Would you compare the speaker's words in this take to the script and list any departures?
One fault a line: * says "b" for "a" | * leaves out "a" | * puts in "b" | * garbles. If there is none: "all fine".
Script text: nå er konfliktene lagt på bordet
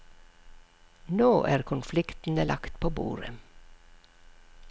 all fine